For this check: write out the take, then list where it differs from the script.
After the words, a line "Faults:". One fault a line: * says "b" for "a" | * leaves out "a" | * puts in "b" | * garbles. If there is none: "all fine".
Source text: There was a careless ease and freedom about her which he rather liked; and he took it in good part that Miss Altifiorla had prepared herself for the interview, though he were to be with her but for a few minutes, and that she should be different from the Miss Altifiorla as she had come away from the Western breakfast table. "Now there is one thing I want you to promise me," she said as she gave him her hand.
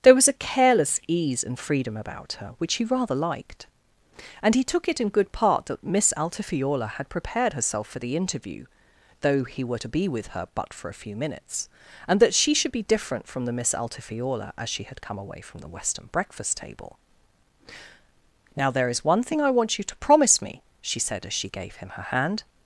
There was a careless ease and freedom about her which he rather liked; and he took it in good part that Miss Altifiorla had prepared herself for the interview, though he were to be with her but for a few minutes, and that she should be different from the Miss Altifiorla as she had come away from the Western breakfast table. "Now there is one thing I want you to promise me," she said as she gave him her hand.
Faults:
all fine